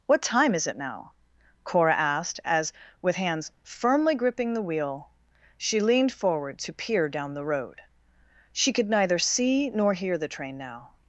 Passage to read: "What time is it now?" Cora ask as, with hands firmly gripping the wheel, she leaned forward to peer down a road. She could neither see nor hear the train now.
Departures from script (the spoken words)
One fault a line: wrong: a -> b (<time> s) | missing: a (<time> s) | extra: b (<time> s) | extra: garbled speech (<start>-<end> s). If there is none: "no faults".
wrong: ask -> asked (1.9 s)
wrong: a -> the (7.3 s)